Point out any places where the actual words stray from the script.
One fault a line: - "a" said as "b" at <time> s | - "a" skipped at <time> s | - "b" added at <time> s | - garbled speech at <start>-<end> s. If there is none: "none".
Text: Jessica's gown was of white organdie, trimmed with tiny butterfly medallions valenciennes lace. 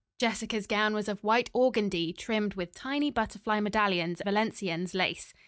none